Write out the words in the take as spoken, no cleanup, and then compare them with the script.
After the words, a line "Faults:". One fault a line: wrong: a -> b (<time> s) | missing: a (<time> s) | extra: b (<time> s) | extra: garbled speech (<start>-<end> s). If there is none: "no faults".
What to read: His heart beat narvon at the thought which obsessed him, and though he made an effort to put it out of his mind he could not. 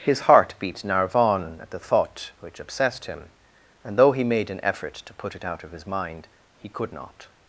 His heart beat narvon at the thought which obsessed him, and though he made an effort to put it out of his mind he could not.
Faults:
no faults